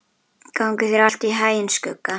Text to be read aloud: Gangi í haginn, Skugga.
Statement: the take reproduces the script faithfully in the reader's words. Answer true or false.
false